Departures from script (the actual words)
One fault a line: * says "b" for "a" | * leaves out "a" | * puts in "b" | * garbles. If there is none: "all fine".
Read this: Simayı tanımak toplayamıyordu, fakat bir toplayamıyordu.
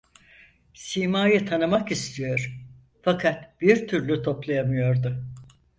* says "istiyor" for "toplayamıyordu"
* puts in "türlü"